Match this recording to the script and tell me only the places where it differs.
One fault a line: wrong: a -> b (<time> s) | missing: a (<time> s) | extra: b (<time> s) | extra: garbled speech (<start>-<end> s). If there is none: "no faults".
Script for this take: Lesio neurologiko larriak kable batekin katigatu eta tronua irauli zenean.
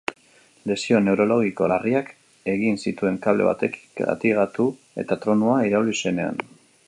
extra: egin zituen (2.5 s)